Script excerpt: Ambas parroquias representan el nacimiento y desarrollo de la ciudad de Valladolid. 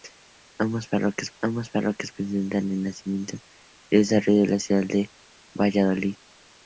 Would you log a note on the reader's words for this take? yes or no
yes